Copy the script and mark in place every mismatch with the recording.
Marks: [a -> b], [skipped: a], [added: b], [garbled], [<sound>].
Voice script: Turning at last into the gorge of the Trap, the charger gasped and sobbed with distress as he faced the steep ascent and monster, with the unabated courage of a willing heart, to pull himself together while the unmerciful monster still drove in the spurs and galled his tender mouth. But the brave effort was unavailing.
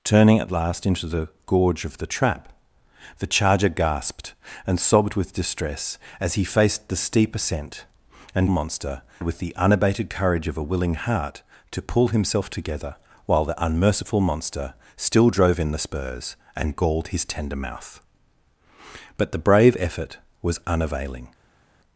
Turning at last into the gorge of the Trap, the charger gasped and sobbed with distress as he faced the steep ascent and monster, with the unabated courage of a willing heart, to pull himself together while the unmerciful monster still drove in the spurs and galled his tender mouth. But the brave effort was unavailing.